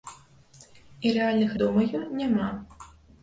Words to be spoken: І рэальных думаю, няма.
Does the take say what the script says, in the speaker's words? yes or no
yes